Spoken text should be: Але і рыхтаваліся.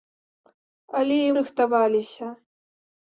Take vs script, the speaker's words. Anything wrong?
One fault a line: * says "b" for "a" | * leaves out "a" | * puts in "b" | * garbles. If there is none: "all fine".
all fine